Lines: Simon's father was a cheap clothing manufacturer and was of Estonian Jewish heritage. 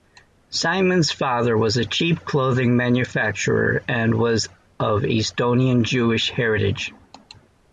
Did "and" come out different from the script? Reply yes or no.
no